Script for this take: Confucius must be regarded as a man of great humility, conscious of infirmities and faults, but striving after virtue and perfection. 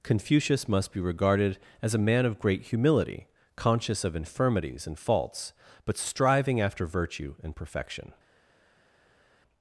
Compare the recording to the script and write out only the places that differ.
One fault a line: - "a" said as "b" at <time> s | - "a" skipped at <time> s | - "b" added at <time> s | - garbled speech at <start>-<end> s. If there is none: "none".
none